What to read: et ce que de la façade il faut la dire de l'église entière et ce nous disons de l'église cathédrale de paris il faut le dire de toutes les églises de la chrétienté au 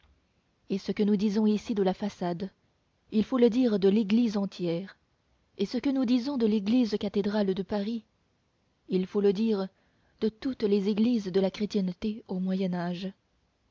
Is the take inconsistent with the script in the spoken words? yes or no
yes